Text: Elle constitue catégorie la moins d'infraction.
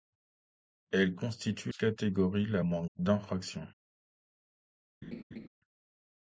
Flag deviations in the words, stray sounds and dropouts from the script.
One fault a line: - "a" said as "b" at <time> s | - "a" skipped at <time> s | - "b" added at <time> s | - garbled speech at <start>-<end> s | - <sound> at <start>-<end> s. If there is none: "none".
- laugh at 5.0-5.5 s